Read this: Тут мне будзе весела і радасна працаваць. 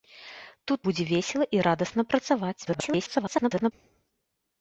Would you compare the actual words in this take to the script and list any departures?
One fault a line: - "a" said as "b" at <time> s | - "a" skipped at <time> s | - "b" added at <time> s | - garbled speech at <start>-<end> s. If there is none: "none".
- "мне" skipped at 0.8 s
- garbled speech at 2.7-3.7 s